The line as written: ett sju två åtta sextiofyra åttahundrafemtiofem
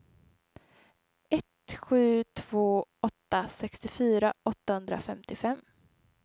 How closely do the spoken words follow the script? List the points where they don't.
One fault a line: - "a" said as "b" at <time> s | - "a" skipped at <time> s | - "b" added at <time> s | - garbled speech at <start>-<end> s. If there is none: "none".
none